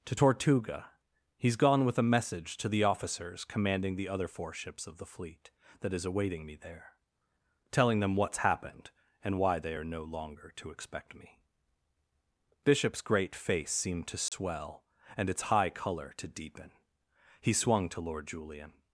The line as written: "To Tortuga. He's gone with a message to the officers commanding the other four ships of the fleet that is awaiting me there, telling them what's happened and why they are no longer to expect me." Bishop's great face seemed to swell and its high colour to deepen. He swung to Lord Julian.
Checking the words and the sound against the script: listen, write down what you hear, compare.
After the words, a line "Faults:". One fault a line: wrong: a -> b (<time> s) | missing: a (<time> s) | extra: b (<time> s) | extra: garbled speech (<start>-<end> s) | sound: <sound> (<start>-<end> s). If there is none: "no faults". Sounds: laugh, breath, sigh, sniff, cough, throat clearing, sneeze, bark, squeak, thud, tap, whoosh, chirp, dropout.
"To Tortuga. He's gone with a message to the officers commanding the other four ships of the fleet that is awaiting me there, telling them what's happened and why they are no longer to expect me." Bishop's great face seemed to swell and its high colour to deepen. He swung to Lord Julian.
Faults:
sound: dropout (14.3-14.3 s)